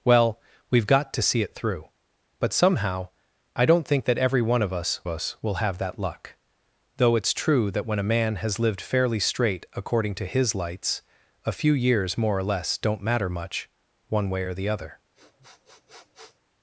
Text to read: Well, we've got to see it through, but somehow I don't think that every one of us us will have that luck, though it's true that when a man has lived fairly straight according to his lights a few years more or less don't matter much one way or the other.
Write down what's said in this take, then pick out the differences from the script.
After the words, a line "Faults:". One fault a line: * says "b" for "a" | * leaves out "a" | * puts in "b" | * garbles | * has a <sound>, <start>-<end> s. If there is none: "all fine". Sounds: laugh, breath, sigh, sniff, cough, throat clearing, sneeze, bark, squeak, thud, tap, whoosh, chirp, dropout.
Well, we've got to see it through, but somehow I don't think that every one of us us will have that luck, though it's true that when a man has lived fairly straight according to his lights a few years more or less don't matter much one way or the other.
Faults:
* has a sniff, 15.1-16.4 s